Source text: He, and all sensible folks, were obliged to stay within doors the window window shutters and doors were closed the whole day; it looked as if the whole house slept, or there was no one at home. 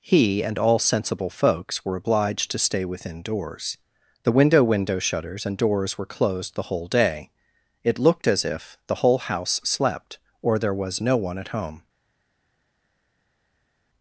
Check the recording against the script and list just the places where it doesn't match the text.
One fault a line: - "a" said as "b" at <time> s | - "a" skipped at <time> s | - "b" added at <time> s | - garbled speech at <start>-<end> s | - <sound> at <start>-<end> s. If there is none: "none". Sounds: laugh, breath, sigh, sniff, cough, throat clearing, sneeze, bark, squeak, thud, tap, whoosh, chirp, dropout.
none